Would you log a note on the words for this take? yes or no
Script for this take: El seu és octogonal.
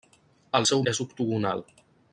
no